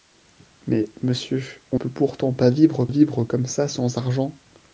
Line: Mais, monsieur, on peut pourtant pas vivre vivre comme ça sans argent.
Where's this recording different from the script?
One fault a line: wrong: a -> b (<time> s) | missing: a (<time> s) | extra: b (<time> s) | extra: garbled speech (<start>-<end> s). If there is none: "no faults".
no faults